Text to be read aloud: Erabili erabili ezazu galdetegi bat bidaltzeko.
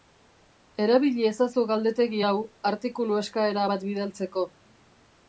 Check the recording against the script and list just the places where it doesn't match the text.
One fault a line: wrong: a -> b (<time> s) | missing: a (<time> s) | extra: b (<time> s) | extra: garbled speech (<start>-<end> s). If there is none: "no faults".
missing: erabili (1.2 s)
extra: hau artikulu eskaera (2.3 s)